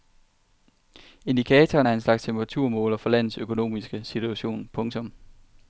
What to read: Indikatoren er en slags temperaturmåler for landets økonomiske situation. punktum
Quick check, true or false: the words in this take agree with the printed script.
true